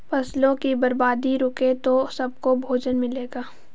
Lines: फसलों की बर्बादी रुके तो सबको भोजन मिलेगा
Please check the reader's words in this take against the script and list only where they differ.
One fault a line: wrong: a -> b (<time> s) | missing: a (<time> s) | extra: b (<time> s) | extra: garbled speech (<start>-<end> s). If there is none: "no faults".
no faults